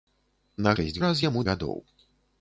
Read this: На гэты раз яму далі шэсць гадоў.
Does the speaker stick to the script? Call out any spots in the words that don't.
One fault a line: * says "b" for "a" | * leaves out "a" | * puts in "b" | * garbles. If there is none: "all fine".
* says "шэсць" for "гэты"
* leaves out "далі шэсць"